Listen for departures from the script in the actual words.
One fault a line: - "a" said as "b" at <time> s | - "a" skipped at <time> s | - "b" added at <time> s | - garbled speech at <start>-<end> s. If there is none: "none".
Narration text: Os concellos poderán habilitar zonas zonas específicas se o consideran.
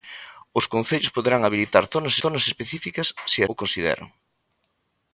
none